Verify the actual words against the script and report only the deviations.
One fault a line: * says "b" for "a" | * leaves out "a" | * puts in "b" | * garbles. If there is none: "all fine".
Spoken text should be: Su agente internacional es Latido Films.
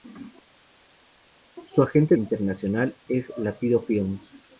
all fine